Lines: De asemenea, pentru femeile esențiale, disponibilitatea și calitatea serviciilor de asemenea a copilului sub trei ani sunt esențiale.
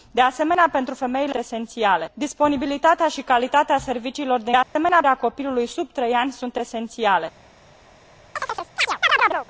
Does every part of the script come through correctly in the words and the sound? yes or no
no